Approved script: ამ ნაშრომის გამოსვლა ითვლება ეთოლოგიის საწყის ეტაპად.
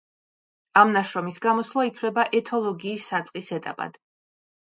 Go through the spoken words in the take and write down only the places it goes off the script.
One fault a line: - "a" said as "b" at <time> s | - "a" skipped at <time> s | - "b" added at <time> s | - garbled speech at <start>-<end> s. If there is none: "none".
none